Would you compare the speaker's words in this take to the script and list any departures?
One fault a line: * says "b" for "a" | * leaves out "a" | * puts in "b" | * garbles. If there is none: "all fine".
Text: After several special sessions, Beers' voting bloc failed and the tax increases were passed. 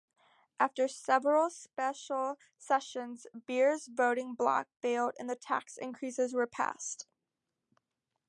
all fine